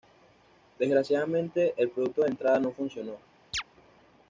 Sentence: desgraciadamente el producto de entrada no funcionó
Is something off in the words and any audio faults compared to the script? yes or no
yes